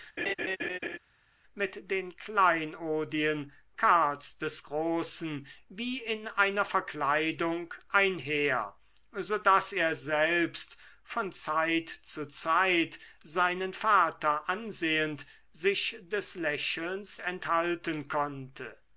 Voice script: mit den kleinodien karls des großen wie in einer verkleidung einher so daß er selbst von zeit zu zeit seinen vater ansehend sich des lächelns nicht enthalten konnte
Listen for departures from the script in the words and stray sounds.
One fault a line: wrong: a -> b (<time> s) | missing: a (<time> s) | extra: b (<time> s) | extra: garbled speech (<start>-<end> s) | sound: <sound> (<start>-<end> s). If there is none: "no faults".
sound: laugh (0.2-1.0 s)
missing: nicht (17.2 s)